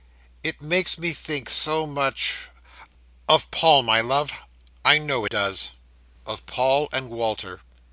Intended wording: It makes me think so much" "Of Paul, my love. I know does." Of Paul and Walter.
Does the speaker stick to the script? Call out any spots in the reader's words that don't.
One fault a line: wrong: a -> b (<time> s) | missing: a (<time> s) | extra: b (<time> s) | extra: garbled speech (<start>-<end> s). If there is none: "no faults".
no faults